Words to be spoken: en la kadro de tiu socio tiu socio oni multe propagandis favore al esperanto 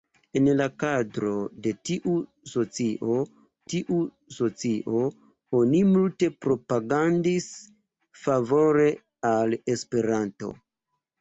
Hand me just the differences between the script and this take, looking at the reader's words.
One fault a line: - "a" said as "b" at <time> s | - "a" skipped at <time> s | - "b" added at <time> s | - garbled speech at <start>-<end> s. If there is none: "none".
none